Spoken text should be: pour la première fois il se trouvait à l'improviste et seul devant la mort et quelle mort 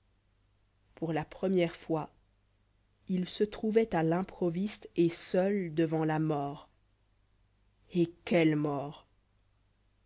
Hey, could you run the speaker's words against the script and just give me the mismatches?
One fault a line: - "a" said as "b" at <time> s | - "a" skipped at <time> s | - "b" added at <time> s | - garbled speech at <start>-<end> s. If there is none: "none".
none